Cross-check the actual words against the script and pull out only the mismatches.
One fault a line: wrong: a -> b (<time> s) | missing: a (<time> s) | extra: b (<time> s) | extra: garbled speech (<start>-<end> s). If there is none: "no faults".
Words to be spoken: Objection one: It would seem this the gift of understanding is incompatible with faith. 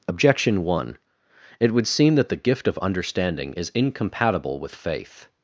wrong: this -> that (2.1 s)